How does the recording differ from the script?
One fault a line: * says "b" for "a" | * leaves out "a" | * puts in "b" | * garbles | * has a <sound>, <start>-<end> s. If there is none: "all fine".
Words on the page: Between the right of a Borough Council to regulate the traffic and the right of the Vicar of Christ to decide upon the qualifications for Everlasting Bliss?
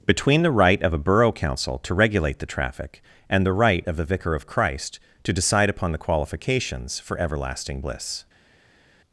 all fine